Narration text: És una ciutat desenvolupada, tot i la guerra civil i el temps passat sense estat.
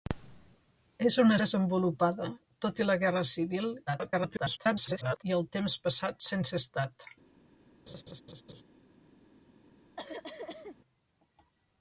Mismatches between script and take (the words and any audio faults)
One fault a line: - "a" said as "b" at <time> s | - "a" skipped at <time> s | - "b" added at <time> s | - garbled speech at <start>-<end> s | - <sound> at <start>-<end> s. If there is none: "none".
- "ciutat" skipped at 1.4 s
- garbled speech at 3.9-5.2 s
- laugh at 7.9-8.6 s
- cough at 10.0-10.8 s